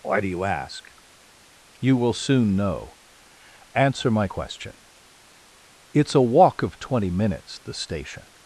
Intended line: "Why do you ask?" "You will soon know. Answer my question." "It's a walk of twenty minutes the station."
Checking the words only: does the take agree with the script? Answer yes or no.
yes